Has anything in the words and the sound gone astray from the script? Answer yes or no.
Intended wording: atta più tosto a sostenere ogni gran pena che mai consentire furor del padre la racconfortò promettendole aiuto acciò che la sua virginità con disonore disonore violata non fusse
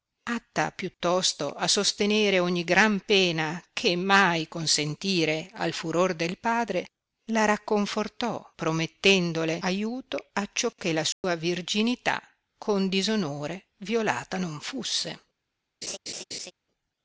yes